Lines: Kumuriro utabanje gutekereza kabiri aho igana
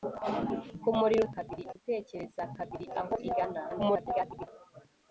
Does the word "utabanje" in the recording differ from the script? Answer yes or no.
yes